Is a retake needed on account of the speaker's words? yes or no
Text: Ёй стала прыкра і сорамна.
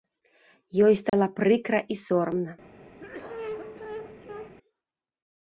no